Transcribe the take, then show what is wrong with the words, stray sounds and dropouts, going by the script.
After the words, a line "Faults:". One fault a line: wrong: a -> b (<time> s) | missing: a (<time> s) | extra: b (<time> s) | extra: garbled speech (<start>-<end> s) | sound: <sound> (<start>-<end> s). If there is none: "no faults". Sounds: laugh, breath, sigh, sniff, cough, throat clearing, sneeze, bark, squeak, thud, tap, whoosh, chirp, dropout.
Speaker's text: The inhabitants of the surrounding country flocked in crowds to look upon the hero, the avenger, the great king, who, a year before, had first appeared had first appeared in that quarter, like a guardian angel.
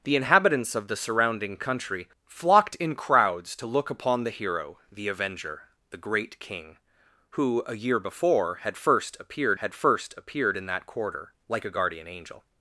The inhabitants of the surrounding country flocked in crowds to look upon the hero, the avenger, the great king, who, a year before, had first appeared had first appeared in that quarter, like a guardian angel.
Faults:
no faults